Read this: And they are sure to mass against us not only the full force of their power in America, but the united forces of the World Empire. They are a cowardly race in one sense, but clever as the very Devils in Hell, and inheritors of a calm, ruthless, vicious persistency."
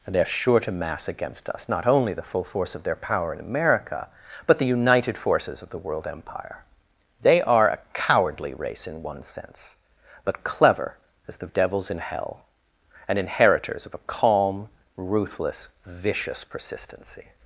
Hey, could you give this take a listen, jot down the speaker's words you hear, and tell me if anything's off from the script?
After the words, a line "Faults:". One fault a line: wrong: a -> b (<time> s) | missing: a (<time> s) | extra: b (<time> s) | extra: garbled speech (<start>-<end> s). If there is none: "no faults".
And they are sure to mass against us not only the full force of their power in America, but the united forces of the World Empire. They are a cowardly race in one sense, but clever as the Devils in Hell, and inheritors of a calm, ruthless, vicious persistency."
Faults:
missing: very (11.5 s)